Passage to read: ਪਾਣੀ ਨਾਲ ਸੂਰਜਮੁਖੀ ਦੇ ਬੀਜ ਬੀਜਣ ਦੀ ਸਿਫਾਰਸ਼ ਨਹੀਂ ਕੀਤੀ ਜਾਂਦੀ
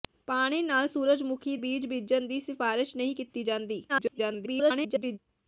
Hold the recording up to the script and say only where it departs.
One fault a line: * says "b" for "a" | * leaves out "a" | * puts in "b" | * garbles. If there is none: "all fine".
* leaves out "ਦੇ"
* garbles